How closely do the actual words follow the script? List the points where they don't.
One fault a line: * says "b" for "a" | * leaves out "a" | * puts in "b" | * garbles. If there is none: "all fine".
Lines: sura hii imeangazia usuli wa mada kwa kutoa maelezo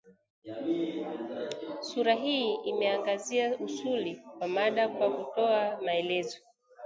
all fine